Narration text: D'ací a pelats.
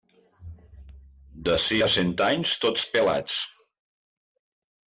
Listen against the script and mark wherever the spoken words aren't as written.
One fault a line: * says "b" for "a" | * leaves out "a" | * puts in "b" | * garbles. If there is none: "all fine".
* puts in "cent anys tots"